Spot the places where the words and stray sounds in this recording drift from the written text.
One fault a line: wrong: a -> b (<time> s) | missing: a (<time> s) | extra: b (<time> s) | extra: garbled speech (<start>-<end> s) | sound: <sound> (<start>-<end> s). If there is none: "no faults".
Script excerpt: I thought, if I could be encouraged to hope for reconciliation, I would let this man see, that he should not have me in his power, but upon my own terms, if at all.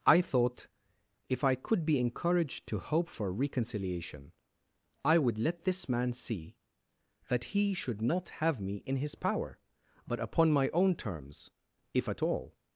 no faults